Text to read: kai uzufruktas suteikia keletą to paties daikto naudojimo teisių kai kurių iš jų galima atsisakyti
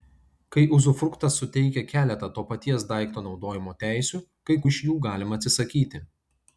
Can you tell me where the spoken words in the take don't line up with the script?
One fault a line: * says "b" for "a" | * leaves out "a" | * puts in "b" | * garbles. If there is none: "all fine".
* leaves out "kurių"